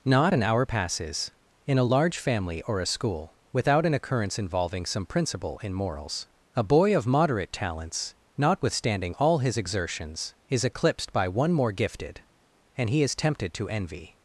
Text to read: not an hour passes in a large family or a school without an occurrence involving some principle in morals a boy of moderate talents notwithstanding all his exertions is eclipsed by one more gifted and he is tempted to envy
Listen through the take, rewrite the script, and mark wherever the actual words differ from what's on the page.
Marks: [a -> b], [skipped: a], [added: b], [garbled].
not an hour passes in a large family or a school without an occurrence involving some principle in morals a boy of moderate talents notwithstanding all his exertions is eclipsed by one more gifted and he is tempted to envy